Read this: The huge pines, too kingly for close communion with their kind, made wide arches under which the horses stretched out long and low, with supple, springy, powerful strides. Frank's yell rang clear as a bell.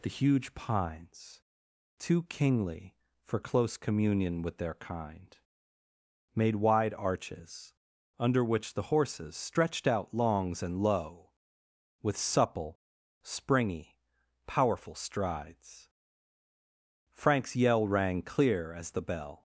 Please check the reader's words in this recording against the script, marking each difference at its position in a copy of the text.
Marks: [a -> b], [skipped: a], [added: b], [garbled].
The huge pines, too kingly for close communion with their kind, made wide arches under which the horses stretched out [long -> longs] and low, with supple, springy, powerful strides. Frank's yell rang clear as [a -> the] bell.